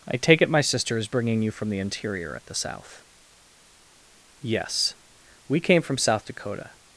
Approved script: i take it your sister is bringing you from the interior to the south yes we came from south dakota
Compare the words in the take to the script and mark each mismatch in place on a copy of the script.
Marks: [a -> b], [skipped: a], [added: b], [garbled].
i take it [your -> my] sister is bringing you from the interior [to -> at] the south yes we came from south dakota